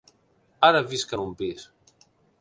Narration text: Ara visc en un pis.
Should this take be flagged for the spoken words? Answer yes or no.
no